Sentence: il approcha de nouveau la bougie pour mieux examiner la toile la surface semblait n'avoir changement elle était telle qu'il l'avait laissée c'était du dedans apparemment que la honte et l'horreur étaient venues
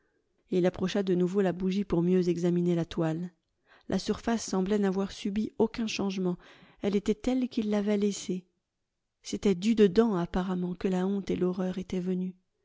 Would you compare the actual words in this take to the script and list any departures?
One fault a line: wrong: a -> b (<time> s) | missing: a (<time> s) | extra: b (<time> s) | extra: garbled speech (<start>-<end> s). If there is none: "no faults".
extra: subi aucun (5.1 s)